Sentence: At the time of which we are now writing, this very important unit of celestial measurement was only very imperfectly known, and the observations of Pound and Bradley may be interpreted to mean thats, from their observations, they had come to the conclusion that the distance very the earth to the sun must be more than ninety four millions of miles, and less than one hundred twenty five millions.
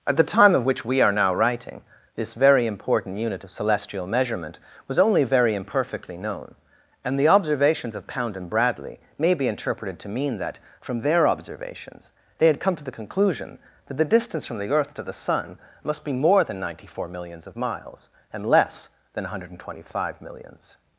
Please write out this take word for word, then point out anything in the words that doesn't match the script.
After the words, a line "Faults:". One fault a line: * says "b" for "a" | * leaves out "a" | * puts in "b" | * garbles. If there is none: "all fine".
At the time of which we are now writing, this very important unit of celestial measurement was only very imperfectly known, and the observations of Pound and Bradley may be interpreted to mean that, from their observations, they had come to the conclusion that the distance from the earth to the sun must be more than ninety four millions of miles, and less than one hundred twenty five millions.
Faults:
* says "that" for "thats"
* says "from" for "very"